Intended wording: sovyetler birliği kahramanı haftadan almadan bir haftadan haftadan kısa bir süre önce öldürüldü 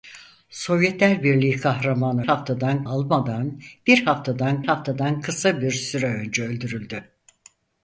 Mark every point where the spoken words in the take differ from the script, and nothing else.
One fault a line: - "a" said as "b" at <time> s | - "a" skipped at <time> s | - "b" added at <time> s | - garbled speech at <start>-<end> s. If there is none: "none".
none